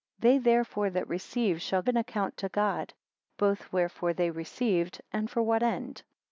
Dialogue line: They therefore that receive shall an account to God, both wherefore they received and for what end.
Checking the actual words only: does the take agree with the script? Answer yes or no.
yes